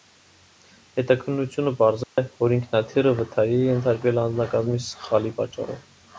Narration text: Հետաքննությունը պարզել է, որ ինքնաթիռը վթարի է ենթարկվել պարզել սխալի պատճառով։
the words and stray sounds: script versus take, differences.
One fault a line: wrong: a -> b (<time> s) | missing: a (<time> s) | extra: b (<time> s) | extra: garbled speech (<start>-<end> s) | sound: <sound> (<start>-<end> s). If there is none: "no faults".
sound: dropout (2.0-2.2 s)
wrong: պարզել -> անձնակազմի (4.2 s)